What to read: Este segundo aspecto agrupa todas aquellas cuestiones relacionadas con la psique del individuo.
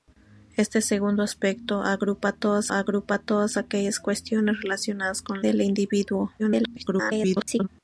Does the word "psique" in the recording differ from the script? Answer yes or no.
yes